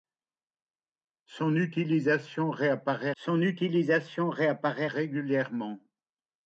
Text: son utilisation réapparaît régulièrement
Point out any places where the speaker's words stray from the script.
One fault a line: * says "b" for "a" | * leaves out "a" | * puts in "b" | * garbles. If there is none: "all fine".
* puts in "son utilisation réapparaît"